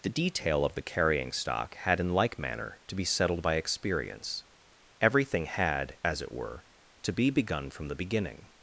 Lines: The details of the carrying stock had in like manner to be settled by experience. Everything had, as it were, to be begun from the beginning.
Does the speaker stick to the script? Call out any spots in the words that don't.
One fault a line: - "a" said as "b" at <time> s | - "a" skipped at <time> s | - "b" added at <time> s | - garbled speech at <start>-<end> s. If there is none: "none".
- "details" said as "detail" at 0.1 s